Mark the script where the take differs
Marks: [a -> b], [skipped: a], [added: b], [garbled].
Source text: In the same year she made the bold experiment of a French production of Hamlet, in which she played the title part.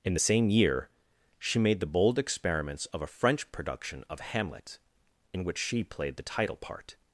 In the same year she made the bold [experiment -> experiments] of a French production of Hamlet, in which she played the title part.